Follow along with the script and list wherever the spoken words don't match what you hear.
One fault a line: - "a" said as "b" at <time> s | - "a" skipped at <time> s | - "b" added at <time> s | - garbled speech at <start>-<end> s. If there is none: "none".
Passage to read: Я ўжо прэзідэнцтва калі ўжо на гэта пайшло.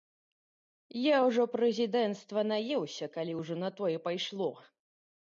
- "наеўся" added at 2.5 s
- "гэта" said as "тое" at 3.8 s